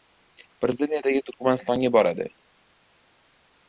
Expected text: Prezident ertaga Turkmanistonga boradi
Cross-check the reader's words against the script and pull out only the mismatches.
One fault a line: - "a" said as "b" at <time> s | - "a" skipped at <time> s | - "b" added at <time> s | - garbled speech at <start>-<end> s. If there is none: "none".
none